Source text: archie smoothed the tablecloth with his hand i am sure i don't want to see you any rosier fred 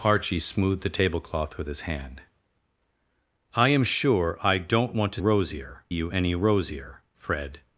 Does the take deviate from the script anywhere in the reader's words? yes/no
yes